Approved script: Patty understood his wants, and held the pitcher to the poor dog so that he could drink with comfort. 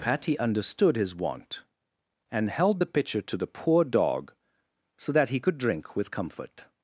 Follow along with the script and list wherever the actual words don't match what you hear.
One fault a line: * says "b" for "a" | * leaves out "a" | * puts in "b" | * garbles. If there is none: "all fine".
* says "want" for "wants"